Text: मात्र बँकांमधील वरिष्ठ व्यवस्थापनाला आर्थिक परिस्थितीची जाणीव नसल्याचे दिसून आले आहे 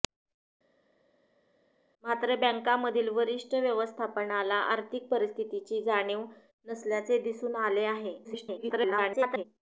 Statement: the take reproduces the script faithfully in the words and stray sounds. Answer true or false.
false